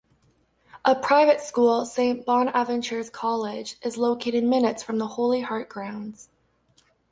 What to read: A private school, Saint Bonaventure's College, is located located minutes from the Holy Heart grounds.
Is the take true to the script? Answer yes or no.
no